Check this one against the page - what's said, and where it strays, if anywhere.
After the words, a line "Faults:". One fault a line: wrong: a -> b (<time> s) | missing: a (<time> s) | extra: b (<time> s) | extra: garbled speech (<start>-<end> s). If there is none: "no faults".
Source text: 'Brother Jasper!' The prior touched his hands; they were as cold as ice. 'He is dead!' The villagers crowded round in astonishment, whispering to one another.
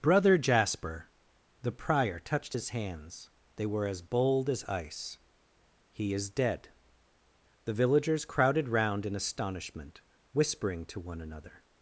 'Brother Jasper!' The prior touched his hands; they were as bold as ice. 'He is dead!' The villagers crowded round in astonishment, whispering to one another.
Faults:
wrong: cold -> bold (4.0 s)